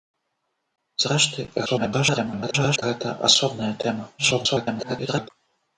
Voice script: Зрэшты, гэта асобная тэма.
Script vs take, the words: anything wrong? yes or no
yes